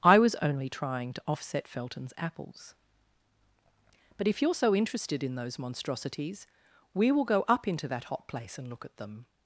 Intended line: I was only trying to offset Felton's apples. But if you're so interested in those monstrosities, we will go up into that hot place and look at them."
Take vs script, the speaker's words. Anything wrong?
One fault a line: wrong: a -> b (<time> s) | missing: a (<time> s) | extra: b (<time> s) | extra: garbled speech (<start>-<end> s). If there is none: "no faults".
no faults